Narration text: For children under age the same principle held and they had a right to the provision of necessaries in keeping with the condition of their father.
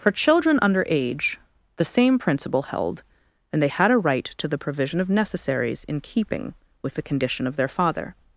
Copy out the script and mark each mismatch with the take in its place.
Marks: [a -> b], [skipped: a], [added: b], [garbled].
For children under age the same principle held and they had a right to the provision of necessaries in keeping with the condition of their father.